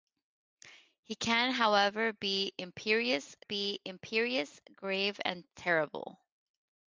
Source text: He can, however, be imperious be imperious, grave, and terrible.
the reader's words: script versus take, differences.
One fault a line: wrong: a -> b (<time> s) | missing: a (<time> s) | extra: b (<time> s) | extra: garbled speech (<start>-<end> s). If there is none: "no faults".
no faults